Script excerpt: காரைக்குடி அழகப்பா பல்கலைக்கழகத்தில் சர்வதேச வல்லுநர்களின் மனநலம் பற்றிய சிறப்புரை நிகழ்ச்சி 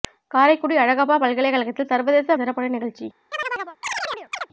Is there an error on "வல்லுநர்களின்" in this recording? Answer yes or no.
yes